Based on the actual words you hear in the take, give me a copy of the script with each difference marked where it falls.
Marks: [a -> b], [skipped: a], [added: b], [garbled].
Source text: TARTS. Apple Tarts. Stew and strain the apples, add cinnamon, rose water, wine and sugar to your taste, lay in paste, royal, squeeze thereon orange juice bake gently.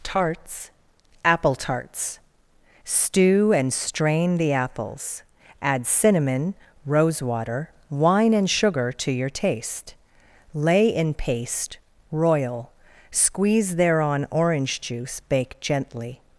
TARTS. Apple Tarts. Stew and strain the apples, add cinnamon, rose water, wine and sugar to your taste, lay in paste, royal, squeeze thereon orange juice bake gently.